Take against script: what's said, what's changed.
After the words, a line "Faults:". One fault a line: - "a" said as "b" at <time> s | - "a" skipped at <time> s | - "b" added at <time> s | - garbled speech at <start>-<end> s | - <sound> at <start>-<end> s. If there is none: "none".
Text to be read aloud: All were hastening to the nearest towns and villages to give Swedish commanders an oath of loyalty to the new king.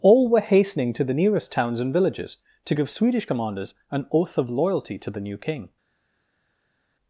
All were hastening to the nearest towns and villages to give Swedish commanders an oath of loyalty to the new king.
Faults:
none